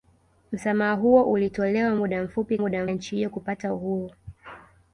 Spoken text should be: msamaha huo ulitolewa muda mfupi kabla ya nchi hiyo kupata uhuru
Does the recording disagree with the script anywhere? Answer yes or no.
yes